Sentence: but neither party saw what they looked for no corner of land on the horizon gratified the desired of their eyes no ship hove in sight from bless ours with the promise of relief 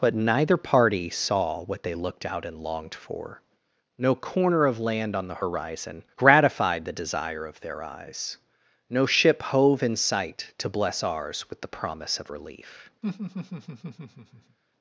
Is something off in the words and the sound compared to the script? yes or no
yes